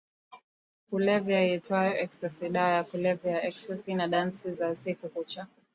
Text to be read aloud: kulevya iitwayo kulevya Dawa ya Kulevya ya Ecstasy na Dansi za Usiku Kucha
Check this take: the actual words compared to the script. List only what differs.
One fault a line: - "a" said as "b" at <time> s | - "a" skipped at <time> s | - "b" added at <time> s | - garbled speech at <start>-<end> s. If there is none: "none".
- "kulevya" said as "ecstasy" at 2.0 s